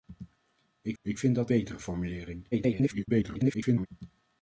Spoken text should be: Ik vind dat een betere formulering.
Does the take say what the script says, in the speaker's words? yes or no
no